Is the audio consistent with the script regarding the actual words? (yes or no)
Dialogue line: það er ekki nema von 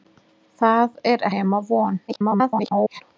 no